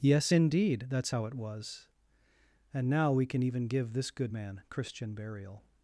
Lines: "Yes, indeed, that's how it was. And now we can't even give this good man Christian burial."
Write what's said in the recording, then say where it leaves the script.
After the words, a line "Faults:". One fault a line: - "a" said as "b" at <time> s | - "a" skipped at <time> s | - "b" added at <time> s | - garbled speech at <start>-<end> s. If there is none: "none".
"Yes, indeed, that's how it was. And now we can even give this good man Christian burial."
Faults:
- "can't" said as "can" at 3.2 s